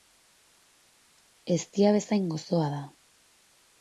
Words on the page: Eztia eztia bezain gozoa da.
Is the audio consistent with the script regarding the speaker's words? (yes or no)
no